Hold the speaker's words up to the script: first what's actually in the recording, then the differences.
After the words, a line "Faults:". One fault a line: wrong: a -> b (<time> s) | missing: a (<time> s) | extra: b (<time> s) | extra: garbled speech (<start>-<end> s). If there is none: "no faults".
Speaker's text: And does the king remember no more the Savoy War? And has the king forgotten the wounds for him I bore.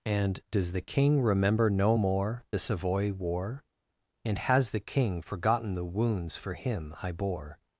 And does the king remember no more the Savoy War? And has the king forgotten the wounds for him I bore.
Faults:
no faults